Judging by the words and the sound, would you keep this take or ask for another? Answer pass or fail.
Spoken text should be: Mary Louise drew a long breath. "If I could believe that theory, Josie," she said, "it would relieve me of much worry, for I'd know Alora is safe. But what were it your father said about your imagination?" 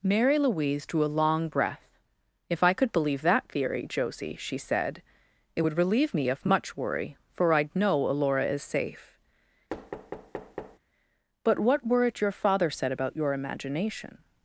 fail